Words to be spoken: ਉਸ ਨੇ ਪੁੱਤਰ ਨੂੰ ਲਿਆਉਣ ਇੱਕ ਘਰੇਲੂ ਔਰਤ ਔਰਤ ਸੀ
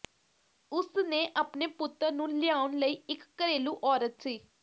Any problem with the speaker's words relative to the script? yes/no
yes